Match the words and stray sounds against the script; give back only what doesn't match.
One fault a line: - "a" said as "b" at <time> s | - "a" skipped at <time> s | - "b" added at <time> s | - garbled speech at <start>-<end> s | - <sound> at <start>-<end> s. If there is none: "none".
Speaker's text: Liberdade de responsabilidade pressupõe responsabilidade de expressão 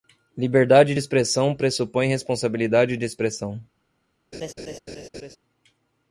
- "responsabilidade" said as "expressão" at 1.0 s
- laugh at 4.3-5.4 s